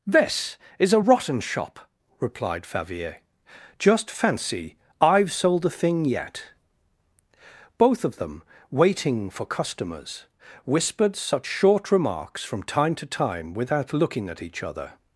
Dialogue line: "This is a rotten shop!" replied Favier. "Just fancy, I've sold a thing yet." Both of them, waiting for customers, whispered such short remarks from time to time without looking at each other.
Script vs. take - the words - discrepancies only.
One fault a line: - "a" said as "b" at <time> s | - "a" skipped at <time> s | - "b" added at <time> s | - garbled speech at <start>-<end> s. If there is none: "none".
none